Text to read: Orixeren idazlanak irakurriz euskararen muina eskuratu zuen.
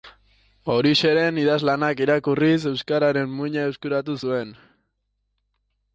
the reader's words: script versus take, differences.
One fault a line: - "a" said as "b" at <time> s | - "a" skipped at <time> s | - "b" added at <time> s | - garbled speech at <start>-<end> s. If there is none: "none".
none